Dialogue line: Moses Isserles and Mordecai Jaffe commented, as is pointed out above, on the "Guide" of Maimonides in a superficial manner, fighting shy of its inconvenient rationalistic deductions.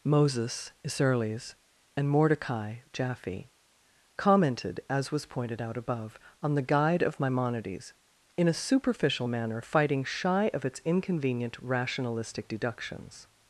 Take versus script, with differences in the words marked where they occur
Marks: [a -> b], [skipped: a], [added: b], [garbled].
Moses Isserles and Mordecai Jaffe commented, as [is -> was] pointed out above, on the "Guide" of Maimonides in a superficial manner, fighting shy of its inconvenient rationalistic deductions.